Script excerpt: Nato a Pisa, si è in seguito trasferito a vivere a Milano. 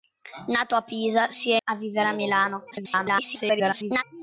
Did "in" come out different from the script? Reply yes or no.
yes